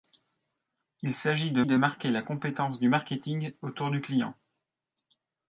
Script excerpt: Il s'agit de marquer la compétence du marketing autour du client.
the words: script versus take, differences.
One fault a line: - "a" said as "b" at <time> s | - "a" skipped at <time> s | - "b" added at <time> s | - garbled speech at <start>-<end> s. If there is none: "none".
- "de" added at 1.7 s